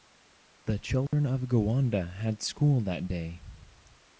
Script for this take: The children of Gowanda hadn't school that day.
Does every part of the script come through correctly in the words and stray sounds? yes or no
no